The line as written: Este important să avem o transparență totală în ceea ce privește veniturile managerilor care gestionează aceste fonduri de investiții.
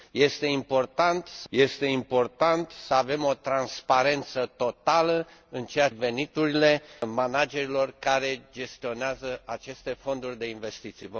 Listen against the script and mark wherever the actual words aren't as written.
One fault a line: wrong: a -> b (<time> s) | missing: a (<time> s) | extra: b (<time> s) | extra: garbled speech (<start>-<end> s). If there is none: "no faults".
extra: este important să (1.5 s)
missing: ce privește (5.9 s)